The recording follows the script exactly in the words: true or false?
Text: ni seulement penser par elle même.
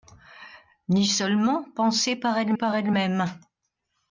false